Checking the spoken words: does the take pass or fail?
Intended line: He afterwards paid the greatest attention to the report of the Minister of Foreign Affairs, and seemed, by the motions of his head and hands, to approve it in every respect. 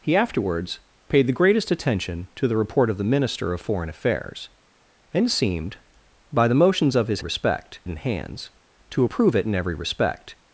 fail